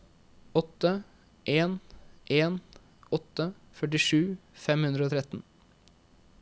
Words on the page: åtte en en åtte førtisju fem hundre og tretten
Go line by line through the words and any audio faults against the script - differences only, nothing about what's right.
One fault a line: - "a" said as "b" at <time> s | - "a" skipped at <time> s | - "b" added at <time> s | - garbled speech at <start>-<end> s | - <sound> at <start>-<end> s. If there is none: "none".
none